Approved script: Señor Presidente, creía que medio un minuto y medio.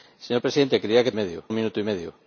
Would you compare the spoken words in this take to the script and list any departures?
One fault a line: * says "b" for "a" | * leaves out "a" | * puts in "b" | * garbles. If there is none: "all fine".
all fine